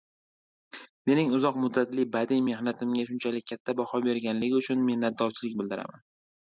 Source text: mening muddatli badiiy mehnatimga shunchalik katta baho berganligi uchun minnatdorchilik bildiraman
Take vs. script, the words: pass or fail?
fail